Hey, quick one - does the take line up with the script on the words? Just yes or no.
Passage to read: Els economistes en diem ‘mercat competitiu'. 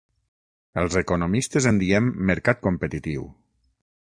yes